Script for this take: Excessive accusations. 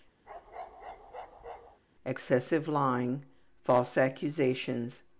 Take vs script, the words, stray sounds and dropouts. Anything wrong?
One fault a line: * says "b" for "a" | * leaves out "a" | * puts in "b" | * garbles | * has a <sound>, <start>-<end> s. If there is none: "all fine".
* has a bark, 0.2-1.8 s
* puts in "lying False"